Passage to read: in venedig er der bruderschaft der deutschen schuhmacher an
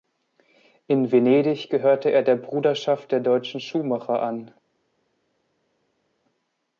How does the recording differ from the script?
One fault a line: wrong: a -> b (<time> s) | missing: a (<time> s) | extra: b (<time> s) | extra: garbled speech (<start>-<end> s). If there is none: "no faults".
extra: gehörte (1.7 s)